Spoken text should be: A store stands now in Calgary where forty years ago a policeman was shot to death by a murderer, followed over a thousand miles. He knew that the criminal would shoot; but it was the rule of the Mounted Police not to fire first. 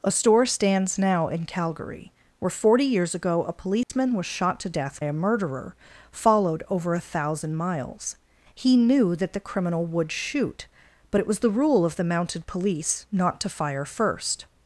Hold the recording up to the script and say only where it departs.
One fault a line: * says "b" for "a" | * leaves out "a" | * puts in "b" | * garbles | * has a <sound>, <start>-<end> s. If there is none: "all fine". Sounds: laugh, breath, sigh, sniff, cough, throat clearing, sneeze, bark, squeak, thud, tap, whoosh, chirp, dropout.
* has a dropout, 3.8-3.9 s
* leaves out "by"